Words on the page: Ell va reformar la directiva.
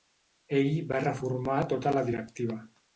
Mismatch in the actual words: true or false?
true